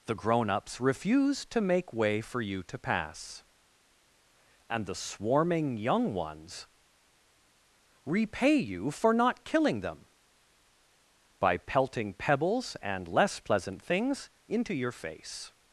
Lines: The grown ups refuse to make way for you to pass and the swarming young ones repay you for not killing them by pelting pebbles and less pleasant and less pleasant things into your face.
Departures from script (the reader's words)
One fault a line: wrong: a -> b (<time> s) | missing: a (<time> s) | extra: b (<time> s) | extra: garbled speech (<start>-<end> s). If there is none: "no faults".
missing: and less pleasant (13.8 s)